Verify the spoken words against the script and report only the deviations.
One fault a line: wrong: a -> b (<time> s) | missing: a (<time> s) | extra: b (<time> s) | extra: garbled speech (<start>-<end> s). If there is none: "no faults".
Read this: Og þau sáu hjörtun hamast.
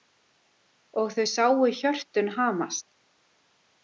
no faults